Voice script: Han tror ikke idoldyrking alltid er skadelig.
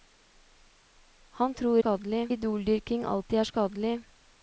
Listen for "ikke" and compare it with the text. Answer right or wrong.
wrong